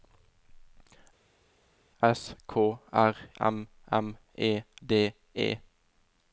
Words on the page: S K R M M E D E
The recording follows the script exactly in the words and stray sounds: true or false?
true